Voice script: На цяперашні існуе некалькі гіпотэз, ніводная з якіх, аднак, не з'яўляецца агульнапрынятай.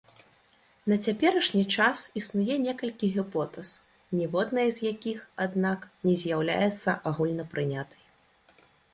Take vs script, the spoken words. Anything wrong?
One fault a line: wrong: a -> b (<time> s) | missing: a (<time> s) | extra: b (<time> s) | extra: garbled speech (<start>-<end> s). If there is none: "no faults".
extra: час (1.8 s)